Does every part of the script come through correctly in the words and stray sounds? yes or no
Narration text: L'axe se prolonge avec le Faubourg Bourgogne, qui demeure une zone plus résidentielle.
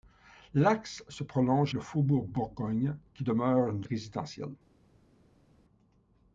no